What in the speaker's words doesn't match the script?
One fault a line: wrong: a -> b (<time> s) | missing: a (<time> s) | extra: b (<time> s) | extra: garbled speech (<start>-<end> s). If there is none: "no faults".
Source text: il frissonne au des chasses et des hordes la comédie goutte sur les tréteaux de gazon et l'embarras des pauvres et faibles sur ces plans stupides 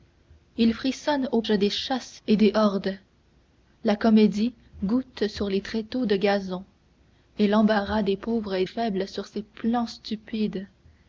no faults